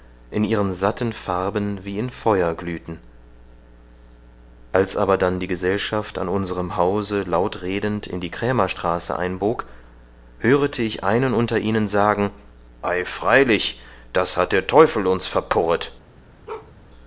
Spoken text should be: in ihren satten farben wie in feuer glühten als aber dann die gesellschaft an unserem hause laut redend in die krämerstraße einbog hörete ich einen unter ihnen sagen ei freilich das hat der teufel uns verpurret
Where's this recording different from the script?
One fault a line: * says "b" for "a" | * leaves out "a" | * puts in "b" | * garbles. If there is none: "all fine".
all fine